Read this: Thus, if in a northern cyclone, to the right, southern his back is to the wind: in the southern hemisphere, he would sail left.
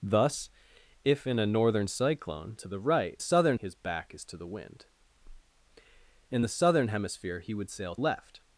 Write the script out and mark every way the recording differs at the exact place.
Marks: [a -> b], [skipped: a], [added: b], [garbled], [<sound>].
Thus, if in a northern cyclone, to the right, southern his back is to the wind: in the southern hemisphere, he would sail left.